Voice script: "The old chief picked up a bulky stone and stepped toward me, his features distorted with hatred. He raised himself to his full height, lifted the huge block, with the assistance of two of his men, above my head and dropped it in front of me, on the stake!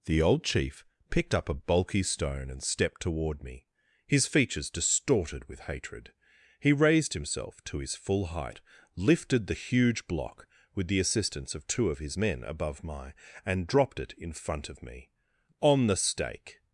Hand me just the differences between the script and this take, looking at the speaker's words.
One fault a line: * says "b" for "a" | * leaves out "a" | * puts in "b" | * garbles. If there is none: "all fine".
* leaves out "head"